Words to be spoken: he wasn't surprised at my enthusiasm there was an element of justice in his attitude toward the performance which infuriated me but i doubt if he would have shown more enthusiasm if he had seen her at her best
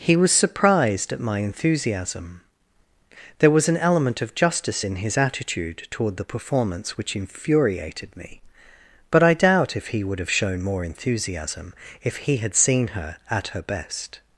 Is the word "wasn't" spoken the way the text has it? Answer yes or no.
no